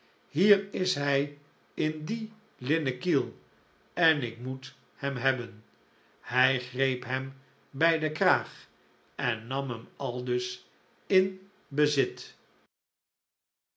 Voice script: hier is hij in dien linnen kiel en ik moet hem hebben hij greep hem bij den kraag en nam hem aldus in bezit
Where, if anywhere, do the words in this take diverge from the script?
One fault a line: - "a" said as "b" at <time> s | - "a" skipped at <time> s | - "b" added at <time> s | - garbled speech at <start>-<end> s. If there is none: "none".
none